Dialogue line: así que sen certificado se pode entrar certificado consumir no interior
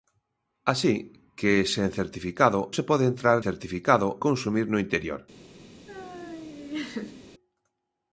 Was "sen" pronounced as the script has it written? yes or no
yes